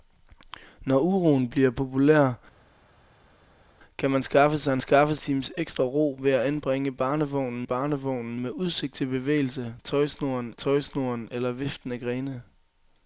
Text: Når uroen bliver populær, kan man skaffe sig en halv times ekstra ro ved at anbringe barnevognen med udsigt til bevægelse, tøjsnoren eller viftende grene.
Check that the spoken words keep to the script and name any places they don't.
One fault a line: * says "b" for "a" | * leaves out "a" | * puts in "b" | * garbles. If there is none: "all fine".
* says "skaffe" for "halv"
* puts in "barnevognen"
* puts in "tøjsnoren"